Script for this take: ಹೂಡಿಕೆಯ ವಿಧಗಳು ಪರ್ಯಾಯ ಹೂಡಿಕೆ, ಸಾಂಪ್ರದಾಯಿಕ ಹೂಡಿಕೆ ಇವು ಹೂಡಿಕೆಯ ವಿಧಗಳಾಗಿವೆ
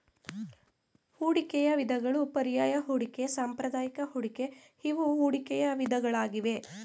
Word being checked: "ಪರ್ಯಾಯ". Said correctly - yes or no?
yes